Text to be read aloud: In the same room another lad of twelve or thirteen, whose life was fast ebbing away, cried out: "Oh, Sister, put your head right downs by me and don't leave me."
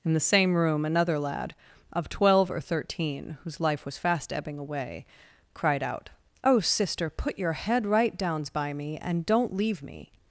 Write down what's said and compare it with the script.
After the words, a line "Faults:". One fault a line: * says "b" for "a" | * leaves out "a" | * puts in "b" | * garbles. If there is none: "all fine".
In the same room another lad of twelve or thirteen, whose life was fast ebbing away, cried out: "Oh, Sister, put your head right downs by me and don't leave me."
Faults:
all fine